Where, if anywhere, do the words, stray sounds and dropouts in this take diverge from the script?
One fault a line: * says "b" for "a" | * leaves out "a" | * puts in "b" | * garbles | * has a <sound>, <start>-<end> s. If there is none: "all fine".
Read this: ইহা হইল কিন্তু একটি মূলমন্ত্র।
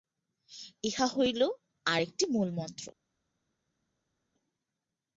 * says "আর" for "কিন্তু"